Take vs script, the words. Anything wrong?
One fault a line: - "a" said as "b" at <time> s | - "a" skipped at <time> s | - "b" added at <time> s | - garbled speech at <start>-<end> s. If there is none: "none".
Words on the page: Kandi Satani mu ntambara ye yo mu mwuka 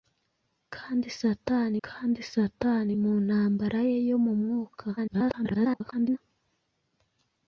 - "kandi Satani" added at 1.9 s
- garbled speech at 5.0-6.2 s